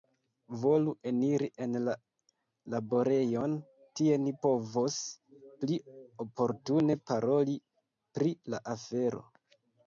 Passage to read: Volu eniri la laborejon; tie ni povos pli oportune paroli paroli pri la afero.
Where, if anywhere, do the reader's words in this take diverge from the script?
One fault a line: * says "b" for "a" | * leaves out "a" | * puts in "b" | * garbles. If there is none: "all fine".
* puts in "en"
* leaves out "paroli"